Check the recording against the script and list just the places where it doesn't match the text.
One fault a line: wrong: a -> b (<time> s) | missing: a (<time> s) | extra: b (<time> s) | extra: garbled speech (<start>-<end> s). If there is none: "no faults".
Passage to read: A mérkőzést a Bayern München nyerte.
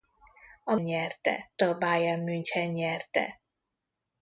wrong: mérkőzést -> nyerte (0.8 s)